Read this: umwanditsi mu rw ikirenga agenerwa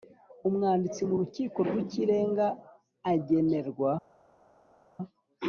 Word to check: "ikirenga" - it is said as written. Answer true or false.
true